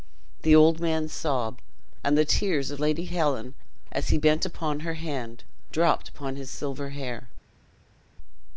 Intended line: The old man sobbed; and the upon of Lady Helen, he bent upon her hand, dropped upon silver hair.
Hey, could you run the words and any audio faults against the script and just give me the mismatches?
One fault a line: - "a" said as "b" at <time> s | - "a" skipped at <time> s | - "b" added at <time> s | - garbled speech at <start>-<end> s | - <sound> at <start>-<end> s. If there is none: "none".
- "upon" said as "tears" at 2.2 s
- "as" added at 3.9 s
- "his" added at 6.4 s